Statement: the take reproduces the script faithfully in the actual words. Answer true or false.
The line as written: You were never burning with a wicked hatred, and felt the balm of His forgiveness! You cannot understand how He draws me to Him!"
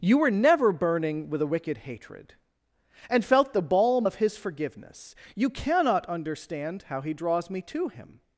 true